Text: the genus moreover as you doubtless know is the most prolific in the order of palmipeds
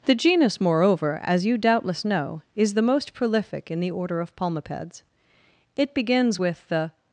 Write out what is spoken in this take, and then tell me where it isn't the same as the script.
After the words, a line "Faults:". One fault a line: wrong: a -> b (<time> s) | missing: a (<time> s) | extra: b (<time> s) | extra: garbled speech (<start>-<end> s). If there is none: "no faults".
the genus moreover as you doubtless know is the most prolific in the order of palmipeds it begins with the
Faults:
extra: it begins with the (5.8 s)